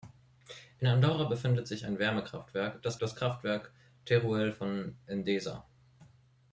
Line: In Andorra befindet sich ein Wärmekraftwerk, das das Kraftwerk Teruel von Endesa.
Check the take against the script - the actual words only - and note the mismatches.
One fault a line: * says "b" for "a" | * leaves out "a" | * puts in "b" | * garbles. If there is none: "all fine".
all fine